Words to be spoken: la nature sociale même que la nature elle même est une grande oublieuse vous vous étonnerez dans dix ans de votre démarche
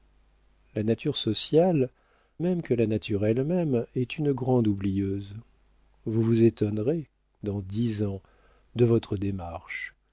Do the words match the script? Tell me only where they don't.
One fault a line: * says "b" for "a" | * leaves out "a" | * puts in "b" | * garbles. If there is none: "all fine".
all fine